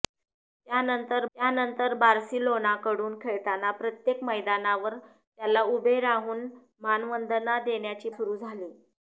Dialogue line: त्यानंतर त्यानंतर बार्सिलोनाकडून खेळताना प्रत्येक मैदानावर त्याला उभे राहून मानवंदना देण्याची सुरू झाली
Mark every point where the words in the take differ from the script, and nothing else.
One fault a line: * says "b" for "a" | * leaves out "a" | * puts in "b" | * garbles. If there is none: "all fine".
all fine